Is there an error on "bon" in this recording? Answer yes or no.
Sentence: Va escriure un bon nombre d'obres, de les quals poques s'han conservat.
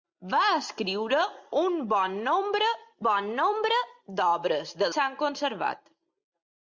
no